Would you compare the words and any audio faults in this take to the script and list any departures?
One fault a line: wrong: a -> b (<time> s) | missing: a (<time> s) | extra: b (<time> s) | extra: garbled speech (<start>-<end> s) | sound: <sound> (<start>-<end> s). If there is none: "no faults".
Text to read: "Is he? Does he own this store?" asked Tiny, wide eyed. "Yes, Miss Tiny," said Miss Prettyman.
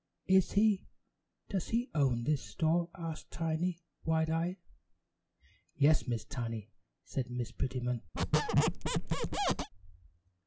sound: squeak (8.1-9.7 s)